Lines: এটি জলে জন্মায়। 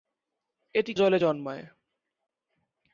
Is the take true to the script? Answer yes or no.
yes